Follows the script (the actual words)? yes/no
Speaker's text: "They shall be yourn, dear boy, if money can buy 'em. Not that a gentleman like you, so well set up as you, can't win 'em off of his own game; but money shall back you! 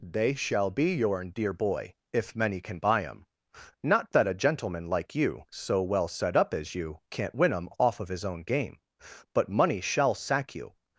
no